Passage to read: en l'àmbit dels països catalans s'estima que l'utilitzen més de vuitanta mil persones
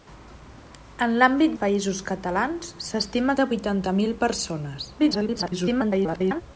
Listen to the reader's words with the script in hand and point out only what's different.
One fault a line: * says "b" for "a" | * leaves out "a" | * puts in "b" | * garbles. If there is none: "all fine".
* leaves out "dels"
* leaves out "que l'utilitzen més"
* garbles